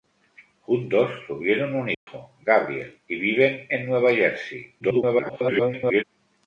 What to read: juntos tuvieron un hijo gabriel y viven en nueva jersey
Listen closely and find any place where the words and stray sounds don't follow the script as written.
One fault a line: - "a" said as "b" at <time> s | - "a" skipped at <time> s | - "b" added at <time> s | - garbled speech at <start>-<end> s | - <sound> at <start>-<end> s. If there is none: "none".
- dropout at 1.9-2.1 s
- garbled speech at 4.8-6.0 s